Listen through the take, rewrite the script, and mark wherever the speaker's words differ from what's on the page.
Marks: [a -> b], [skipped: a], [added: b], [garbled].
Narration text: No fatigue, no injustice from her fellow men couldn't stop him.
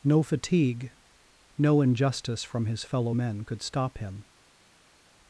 No fatigue, no injustice from [her -> his] fellow men [couldn't -> could] stop him.